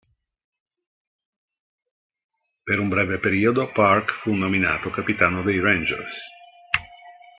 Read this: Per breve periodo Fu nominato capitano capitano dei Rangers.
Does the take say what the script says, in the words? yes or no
no